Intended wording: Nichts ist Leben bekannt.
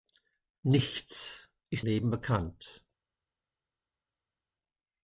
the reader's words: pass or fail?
pass